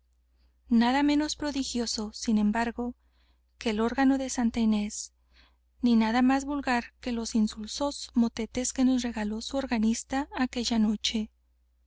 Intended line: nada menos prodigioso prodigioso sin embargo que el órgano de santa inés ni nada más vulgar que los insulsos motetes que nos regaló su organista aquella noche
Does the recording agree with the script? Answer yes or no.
no